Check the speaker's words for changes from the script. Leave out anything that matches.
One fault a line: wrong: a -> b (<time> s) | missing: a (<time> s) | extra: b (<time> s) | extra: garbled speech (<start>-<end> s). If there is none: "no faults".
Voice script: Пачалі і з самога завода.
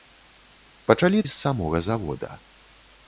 no faults